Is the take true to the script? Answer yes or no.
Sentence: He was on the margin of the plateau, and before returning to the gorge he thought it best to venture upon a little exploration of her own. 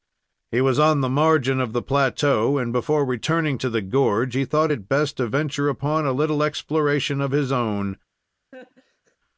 no